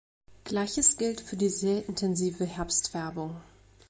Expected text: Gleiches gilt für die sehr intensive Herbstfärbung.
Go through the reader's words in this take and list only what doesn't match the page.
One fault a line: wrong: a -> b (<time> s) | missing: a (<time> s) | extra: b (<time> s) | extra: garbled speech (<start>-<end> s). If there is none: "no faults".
no faults